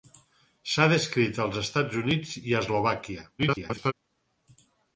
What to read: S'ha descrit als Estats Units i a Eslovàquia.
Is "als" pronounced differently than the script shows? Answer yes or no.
no